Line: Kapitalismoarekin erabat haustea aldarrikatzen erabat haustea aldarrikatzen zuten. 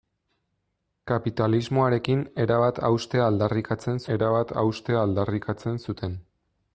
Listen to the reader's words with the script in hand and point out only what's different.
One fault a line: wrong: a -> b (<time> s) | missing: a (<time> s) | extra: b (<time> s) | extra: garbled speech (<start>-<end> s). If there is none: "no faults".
no faults